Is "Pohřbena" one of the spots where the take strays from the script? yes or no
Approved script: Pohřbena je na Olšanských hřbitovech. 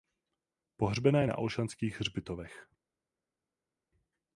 no